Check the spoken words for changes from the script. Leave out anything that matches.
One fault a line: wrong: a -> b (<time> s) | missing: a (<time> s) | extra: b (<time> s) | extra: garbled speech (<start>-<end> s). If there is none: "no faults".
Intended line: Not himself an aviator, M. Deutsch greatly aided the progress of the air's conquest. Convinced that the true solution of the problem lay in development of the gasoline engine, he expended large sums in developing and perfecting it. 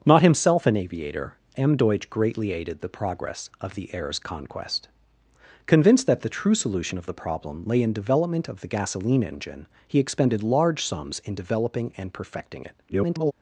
extra: garbled speech (12.9-13.3 s)